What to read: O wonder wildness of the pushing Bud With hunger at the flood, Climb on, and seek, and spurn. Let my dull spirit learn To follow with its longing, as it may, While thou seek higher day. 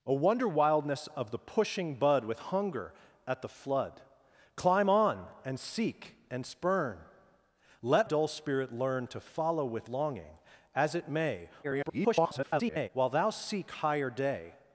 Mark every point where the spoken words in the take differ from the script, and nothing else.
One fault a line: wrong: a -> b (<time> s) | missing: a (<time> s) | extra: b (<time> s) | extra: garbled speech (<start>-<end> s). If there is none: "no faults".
missing: my (8.1 s)
missing: its (9.9 s)
extra: garbled speech (11.6-12.9 s)